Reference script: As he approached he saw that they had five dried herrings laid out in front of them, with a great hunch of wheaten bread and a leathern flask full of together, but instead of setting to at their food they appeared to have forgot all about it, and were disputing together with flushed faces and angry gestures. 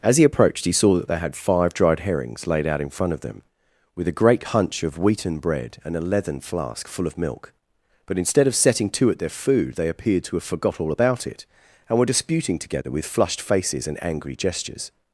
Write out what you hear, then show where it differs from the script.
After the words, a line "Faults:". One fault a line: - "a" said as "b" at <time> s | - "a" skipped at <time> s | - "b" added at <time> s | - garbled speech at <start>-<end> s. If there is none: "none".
As he approached he saw that they had five dried herrings laid out in front of them, with a great hunch of wheaten bread and a leathern flask full of milk, but instead of setting to at their food they appeared to have forgot all about it, and were disputing together with flushed faces and angry gestures.
Faults:
- "together" said as "milk" at 7.2 s